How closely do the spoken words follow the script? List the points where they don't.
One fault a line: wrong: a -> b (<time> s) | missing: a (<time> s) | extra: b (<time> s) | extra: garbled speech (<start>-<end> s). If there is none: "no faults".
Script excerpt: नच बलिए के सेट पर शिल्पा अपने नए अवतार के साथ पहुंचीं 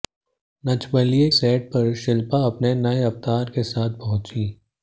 missing: के (1.3 s)